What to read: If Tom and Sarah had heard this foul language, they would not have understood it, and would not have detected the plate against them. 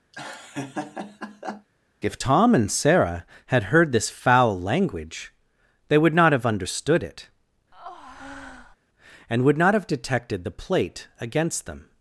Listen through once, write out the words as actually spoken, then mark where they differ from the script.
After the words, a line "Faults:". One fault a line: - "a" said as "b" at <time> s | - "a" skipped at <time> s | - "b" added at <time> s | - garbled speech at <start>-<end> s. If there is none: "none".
If Tom and Sarah had heard this foul language, they would not have understood it, and would not have detected the plate against them.
Faults:
none